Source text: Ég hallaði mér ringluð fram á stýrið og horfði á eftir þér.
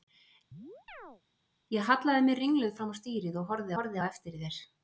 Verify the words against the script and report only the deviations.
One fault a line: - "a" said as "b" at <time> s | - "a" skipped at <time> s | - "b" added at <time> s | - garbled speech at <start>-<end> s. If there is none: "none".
- "horfði" added at 3.8 s